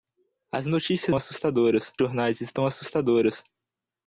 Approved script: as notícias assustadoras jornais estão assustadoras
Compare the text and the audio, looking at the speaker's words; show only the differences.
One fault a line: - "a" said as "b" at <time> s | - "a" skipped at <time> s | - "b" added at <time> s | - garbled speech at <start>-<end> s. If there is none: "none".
none